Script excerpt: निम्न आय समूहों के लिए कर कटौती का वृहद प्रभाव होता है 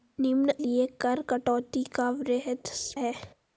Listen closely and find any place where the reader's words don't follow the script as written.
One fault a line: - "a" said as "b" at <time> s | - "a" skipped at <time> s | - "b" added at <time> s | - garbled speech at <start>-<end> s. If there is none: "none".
- "आय समूहों के" skipped at 0.5 s
- "प्रभाव होता" skipped at 2.7 s